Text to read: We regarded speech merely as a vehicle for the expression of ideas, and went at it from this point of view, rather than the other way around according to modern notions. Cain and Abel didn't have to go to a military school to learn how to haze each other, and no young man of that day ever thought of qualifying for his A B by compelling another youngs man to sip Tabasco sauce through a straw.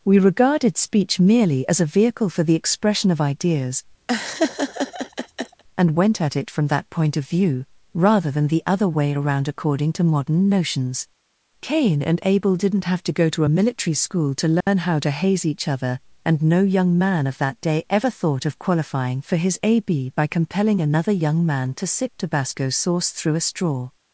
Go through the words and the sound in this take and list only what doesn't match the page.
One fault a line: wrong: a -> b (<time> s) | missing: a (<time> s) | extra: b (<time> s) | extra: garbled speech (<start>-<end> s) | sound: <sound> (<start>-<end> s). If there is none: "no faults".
sound: laugh (4.1-5.6 s)
wrong: this -> that (6.7 s)
sound: dropout (14.6-14.7 s)
wrong: youngs -> young (21.1 s)